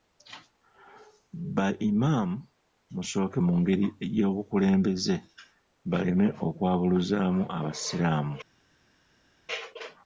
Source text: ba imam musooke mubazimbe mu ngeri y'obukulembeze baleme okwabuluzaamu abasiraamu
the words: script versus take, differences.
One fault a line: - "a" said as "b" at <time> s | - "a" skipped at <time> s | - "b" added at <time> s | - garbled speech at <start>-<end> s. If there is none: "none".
- "mubazimbe" skipped at 3.4 s